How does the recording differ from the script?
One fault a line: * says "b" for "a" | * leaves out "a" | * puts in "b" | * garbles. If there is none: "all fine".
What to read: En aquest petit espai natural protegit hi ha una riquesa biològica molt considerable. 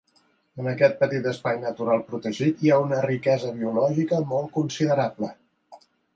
all fine